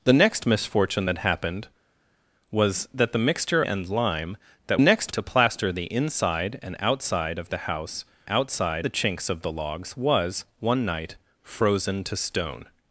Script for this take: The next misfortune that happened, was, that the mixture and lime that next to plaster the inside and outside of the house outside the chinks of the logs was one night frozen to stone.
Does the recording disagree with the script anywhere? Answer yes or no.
no